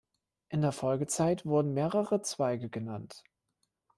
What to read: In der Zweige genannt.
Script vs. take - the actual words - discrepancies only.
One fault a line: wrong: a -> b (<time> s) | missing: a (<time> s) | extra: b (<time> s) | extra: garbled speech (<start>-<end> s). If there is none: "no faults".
extra: Folgezeit wurden mehrere (0.7 s)